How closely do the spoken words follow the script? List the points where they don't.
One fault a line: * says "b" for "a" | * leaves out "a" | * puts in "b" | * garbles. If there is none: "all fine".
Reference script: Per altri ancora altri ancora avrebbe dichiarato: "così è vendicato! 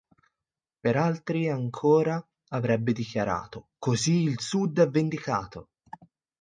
* leaves out "altri ancora"
* puts in "il Sud"